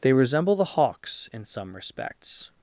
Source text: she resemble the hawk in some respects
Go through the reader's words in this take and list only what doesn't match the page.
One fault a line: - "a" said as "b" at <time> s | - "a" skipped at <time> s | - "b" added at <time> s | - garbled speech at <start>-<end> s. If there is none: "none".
- "she" said as "they" at 0.0 s
- "hawk" said as "hawks" at 0.6 s